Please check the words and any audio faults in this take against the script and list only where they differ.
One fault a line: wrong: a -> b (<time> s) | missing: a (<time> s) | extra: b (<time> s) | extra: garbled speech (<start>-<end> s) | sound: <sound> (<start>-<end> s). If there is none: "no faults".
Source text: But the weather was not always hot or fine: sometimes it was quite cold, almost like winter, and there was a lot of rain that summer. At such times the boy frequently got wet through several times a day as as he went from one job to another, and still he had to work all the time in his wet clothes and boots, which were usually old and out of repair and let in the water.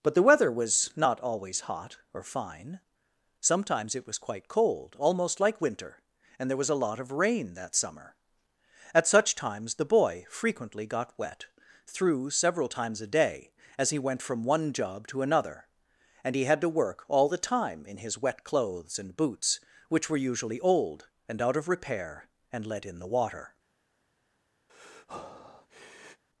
missing: as (13.9 s)
missing: still (16.3 s)
sound: breath (24.7-26.2 s)